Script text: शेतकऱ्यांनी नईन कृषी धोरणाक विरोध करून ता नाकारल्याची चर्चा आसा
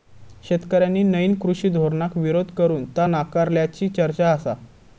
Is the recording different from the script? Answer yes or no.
no